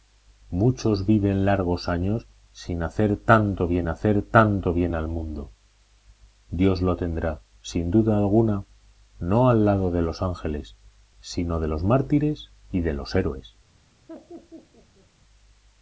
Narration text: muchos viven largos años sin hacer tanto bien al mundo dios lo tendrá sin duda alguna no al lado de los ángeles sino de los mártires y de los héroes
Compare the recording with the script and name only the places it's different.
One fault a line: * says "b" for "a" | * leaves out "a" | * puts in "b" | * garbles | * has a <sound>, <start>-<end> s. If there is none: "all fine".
* puts in "hacer tanto bien"
* has a laugh, 14.1-15.1 s